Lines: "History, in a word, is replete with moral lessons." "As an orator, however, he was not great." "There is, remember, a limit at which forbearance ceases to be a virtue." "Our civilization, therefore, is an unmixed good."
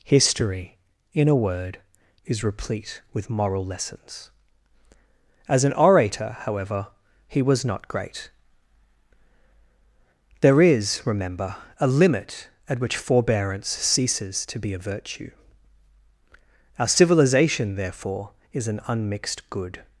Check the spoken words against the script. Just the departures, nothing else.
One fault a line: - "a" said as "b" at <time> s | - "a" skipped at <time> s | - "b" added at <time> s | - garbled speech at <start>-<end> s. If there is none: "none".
none